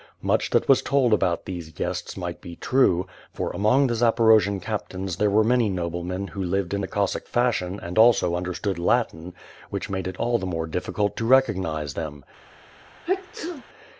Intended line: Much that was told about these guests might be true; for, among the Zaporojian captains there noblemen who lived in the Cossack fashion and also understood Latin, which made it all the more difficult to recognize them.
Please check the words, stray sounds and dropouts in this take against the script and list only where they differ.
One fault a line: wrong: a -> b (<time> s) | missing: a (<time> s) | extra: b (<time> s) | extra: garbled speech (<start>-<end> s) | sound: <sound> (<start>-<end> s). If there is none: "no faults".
extra: were many (5.3 s)
sound: sneeze (13.1-13.6 s)